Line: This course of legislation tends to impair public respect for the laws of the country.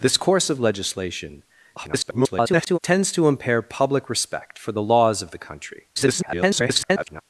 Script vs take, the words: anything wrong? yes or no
yes